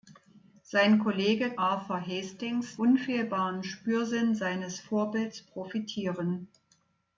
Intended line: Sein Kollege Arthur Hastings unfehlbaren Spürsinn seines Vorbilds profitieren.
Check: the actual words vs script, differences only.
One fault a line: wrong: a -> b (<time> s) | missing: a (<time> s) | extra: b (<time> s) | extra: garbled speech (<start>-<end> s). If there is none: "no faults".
no faults